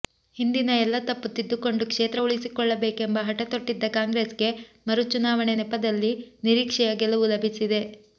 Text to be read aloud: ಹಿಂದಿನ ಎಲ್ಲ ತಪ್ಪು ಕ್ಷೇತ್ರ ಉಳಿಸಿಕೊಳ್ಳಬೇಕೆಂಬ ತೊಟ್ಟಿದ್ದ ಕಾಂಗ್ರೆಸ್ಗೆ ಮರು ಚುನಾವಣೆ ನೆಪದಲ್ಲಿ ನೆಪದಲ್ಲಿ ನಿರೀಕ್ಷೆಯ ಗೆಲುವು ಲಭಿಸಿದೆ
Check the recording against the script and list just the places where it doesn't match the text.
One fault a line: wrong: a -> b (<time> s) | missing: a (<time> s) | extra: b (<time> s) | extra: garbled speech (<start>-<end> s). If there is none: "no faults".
extra: ತಿದ್ದಿಕೊಂಡು (1.3 s)
extra: ಹಠ (3.3 s)
missing: ನೆಪದಲ್ಲಿ (6.1 s)